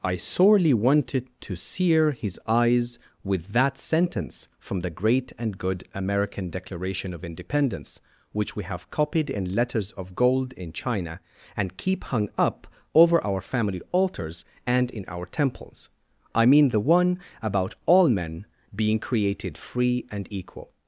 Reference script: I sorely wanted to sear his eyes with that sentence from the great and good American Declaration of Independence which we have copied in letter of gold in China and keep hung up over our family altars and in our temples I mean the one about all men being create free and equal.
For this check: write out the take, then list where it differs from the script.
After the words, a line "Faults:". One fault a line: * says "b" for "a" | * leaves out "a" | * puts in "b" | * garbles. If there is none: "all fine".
I sorely wanted to sear his eyes with that sentence from the great and good American Declaration of Independence which we have copied in letters of gold in China and keep hung up over our family altars and in our temples I mean the one about all men being created free and equal.
Faults:
* says "letters" for "letter"
* says "created" for "create"